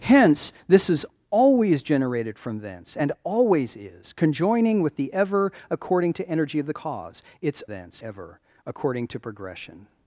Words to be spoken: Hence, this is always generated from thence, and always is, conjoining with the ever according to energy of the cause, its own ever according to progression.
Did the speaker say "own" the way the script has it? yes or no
no